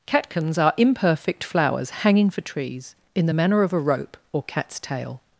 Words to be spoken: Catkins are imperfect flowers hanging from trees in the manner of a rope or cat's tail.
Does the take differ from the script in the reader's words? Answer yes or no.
yes